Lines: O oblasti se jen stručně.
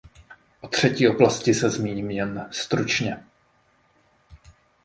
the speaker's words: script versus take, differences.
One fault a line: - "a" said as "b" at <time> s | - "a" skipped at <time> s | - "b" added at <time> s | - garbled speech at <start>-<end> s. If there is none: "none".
- "třetí" added at 0.7 s
- "zmíním" added at 1.7 s